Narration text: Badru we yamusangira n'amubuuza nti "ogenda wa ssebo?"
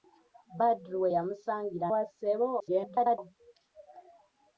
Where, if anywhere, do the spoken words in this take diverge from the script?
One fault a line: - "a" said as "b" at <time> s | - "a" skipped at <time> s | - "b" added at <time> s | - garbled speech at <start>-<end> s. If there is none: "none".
- "n'amubuuza nti ogenda" skipped at 1.9 s
- garbled speech at 2.6-3.2 s